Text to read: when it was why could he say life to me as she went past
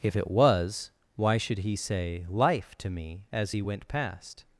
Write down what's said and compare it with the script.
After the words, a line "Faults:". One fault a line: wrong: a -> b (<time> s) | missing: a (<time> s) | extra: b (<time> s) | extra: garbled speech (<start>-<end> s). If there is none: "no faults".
if it was why should he say life to me as he went past
Faults:
wrong: when -> if (0.0 s)
wrong: could -> should (1.4 s)
wrong: she -> he (3.5 s)